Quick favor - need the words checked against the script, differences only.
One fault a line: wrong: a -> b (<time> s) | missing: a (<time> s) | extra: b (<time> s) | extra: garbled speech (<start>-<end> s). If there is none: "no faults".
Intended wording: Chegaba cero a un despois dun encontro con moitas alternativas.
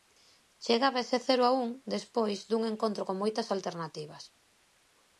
extra: ese (1.1 s)